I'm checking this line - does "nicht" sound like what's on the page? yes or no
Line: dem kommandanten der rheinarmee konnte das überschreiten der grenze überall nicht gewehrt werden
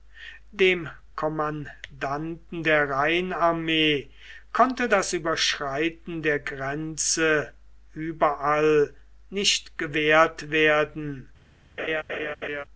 yes